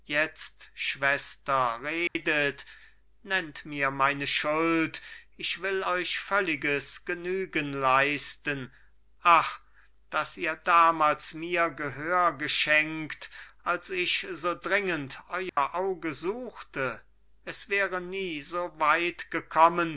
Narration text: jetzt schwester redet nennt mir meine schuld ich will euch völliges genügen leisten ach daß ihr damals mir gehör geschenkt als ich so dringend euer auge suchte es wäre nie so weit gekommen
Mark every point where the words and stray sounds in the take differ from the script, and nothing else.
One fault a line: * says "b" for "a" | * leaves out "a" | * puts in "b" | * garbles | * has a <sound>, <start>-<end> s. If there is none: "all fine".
* has a dropout, 2.1-2.2 s
* has a dropout, 15.5-15.6 s